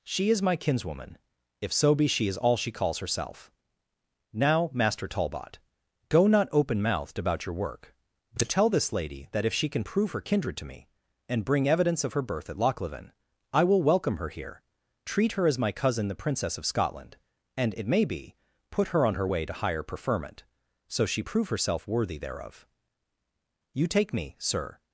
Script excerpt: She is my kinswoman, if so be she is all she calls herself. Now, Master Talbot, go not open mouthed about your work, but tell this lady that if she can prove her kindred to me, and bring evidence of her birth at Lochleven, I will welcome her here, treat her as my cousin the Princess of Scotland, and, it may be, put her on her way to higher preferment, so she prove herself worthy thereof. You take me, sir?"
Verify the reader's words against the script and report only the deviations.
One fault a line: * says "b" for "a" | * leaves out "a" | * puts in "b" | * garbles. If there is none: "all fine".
all fine